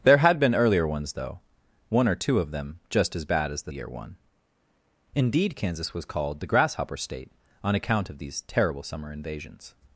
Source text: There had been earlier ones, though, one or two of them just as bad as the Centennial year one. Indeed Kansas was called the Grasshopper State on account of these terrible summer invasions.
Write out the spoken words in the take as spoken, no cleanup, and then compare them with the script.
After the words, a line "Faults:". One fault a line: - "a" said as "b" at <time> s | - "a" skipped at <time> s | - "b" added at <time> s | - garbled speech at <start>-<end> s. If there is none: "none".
There had been earlier ones, though, one or two of them just as bad as the Year one. Indeed Kansas was called the Grasshopper State on account of these terrible summer invasions.
Faults:
- "Centennial" skipped at 3.7 s